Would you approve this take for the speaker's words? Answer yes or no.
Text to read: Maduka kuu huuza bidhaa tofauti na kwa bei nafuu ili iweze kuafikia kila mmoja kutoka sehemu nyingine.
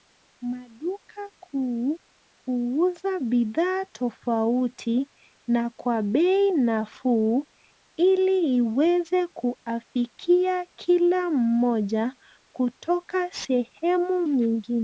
yes